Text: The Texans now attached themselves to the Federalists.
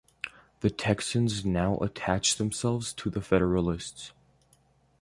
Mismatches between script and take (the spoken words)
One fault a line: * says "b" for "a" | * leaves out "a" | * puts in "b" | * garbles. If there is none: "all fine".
all fine